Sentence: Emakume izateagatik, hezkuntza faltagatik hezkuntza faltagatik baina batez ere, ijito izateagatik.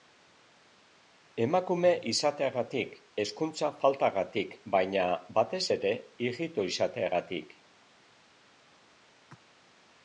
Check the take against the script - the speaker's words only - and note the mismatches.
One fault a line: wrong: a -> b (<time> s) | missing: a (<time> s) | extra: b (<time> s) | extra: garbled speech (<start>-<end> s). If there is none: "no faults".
missing: hezkuntza faltagatik (4.6 s)